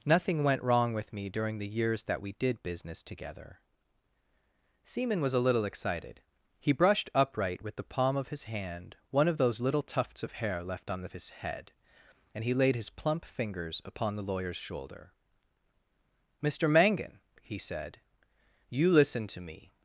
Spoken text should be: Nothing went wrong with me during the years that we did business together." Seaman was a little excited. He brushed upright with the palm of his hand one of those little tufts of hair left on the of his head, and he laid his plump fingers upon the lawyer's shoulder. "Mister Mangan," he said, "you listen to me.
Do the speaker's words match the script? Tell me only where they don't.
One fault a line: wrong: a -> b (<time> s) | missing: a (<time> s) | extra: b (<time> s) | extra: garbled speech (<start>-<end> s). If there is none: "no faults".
no faults